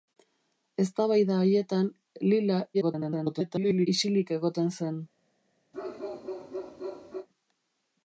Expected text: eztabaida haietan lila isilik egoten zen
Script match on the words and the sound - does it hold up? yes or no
no